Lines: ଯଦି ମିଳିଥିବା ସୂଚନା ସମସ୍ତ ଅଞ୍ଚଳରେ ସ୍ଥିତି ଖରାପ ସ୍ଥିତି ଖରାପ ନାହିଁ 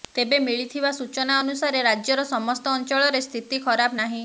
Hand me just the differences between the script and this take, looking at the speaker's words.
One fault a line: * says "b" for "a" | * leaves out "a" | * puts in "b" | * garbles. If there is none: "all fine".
* says "ତେବେ" for "ଯଦି"
* puts in "ଅନୁସାରେ ରାଜ୍ୟର"
* leaves out "ସ୍ଥିତି ଖରାପ"